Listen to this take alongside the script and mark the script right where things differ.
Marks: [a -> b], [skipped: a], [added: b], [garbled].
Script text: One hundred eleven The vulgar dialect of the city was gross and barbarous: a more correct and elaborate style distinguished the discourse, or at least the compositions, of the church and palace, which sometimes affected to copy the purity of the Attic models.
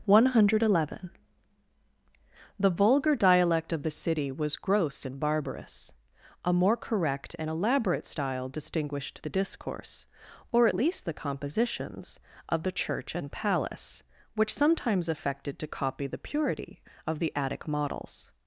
One hundred eleven The vulgar dialect of the city was gross and barbarous: a more correct and elaborate style distinguished the discourse, or at least the compositions, of the church and palace, which sometimes affected to copy the purity of the Attic models.